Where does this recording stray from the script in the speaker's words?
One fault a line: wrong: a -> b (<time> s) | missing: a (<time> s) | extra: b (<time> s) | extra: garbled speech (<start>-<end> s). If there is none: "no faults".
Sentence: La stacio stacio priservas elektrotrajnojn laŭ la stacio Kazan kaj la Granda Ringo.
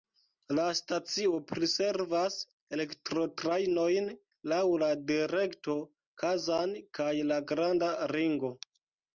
missing: stacio (1.3 s)
wrong: stacio -> direkto (5.1 s)